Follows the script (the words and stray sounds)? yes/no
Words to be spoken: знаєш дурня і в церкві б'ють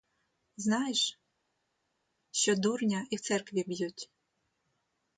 no